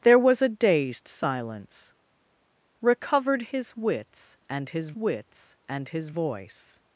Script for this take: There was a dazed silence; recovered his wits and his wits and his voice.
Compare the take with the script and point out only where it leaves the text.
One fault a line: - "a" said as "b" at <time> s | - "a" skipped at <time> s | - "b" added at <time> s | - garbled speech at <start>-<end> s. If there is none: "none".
none